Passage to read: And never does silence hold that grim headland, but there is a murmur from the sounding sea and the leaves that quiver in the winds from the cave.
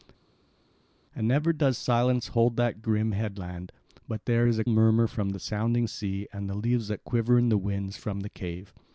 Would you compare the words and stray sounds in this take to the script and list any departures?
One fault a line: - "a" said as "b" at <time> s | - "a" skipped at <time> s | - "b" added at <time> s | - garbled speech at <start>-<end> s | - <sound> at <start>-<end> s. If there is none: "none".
none